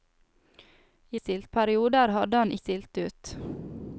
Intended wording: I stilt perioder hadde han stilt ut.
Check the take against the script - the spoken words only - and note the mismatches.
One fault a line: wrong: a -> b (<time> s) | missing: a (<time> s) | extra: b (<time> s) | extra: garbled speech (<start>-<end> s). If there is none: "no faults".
no faults